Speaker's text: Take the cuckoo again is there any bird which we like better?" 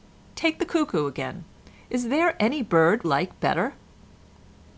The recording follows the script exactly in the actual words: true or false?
false